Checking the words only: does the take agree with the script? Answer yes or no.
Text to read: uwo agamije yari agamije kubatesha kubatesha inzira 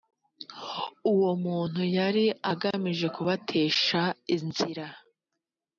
no